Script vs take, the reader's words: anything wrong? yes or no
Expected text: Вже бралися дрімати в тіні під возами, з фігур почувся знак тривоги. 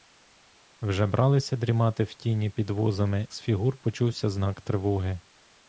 no